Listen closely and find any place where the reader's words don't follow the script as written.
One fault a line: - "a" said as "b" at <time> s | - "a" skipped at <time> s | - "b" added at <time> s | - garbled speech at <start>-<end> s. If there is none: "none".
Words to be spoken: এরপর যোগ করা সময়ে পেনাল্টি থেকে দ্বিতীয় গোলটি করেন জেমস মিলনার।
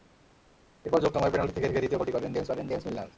- "করা" skipped at 1.1 s
- "থেকে" added at 1.7 s
- "করেন জেমস" added at 2.5 s